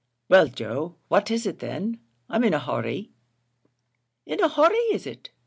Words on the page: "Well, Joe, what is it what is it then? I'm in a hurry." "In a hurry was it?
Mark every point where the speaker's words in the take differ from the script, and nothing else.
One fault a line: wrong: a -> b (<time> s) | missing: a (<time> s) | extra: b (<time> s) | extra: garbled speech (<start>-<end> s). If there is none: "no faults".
missing: what is it (1.6 s)
wrong: was -> is (4.9 s)